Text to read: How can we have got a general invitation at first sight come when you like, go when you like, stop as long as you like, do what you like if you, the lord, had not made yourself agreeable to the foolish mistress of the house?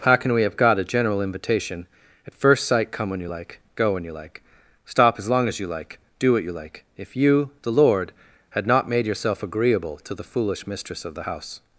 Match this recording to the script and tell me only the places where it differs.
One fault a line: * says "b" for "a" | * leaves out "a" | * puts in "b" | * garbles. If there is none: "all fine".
all fine